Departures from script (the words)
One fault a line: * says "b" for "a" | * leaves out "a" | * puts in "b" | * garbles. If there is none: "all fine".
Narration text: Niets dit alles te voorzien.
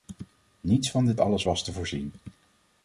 * puts in "van"
* puts in "was"